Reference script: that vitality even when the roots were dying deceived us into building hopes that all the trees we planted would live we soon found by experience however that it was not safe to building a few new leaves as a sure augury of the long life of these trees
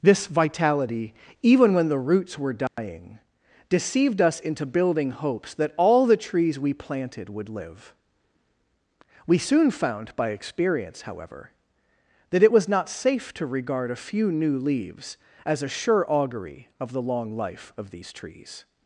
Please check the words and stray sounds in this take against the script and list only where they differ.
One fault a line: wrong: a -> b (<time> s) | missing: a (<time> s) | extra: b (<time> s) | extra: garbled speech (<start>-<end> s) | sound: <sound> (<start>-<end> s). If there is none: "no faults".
wrong: that -> this (0.0 s)
sound: dropout (2.7-2.8 s)
wrong: building -> regard (13.5 s)